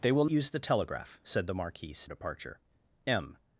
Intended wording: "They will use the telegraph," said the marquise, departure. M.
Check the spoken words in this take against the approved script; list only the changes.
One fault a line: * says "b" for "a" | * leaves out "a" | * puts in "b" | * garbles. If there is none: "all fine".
all fine